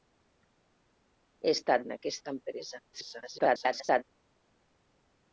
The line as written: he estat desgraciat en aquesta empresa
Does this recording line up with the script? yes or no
no